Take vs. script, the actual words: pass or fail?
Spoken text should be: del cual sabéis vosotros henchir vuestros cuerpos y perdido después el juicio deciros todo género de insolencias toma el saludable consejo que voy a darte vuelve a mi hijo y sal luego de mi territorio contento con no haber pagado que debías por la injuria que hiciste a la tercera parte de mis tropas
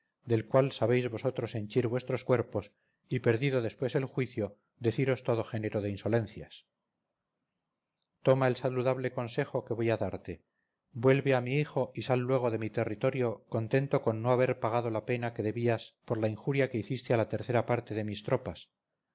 fail